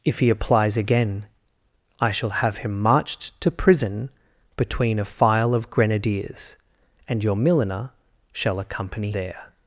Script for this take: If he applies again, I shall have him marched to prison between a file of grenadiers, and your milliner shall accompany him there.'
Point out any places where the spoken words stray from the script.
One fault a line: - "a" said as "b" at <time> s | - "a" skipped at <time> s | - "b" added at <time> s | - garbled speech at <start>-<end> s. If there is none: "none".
- "him" skipped at 9.1 s